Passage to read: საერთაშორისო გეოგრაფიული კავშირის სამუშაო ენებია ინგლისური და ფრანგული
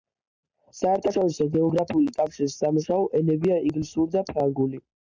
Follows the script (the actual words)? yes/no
yes